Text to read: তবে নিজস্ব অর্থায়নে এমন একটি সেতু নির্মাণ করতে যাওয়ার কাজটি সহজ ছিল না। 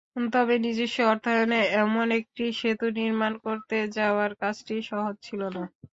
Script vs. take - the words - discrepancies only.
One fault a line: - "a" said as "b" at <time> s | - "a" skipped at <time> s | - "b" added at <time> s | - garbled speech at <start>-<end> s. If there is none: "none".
none